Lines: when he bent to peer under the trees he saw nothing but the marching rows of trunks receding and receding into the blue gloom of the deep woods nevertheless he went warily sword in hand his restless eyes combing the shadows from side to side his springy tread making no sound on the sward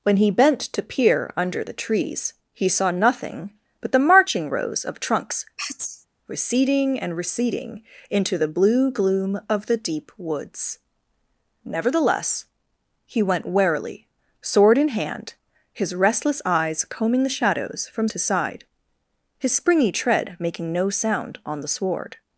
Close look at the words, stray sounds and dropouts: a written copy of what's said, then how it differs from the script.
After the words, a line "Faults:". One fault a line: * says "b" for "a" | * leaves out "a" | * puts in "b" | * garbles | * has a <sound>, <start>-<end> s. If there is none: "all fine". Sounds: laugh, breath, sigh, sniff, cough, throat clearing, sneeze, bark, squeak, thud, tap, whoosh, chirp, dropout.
when he bent to peer under the trees he saw nothing but the marching rows of trunks receding and receding into the blue gloom of the deep woods nevertheless he went warily sword in hand his restless eyes combing the shadows from to side his springy tread making no sound on the sward
Faults:
* has a sneeze, 5.6-6.1 s
* leaves out "side"